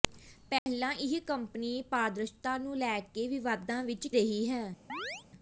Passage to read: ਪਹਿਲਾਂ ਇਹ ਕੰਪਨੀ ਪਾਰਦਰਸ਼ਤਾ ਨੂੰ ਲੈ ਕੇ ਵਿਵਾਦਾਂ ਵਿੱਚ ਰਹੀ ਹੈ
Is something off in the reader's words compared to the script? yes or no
no